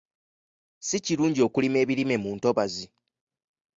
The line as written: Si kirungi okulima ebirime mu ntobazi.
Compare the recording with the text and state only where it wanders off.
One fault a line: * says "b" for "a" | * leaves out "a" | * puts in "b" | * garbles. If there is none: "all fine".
all fine